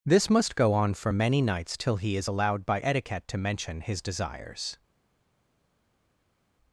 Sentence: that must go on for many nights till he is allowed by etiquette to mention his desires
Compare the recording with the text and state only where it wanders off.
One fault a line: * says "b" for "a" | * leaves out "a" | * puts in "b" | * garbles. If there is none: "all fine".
* says "this" for "that"